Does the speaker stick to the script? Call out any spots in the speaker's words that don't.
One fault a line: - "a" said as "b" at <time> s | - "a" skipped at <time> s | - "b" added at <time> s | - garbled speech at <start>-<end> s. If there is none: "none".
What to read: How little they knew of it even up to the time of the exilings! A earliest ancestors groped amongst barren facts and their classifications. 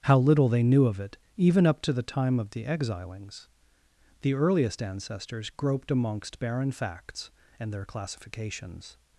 - "A" said as "The" at 4.2 s